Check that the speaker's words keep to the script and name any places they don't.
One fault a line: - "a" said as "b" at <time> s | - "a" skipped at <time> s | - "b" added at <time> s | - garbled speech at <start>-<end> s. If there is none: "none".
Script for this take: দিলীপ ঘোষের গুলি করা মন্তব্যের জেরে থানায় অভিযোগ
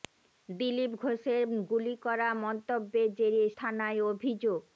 none